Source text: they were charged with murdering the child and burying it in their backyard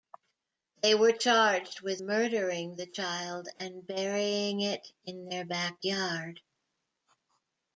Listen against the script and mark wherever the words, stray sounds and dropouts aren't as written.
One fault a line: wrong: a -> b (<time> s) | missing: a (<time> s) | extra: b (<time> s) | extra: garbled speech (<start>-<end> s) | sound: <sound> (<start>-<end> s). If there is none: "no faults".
no faults